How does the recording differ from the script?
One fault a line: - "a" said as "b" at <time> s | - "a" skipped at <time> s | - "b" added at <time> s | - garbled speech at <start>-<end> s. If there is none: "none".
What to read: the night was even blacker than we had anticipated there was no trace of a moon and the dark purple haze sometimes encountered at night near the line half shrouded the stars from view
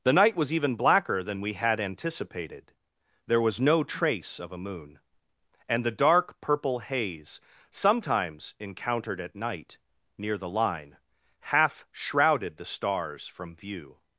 none